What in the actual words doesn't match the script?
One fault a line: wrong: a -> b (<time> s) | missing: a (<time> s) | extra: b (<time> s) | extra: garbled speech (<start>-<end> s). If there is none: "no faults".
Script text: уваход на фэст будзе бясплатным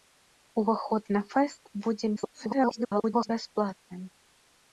extra: garbled speech (2.2-3.3 s)